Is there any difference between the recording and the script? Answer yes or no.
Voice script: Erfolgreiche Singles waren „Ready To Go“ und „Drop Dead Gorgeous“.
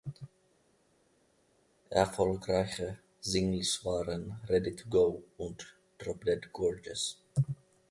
no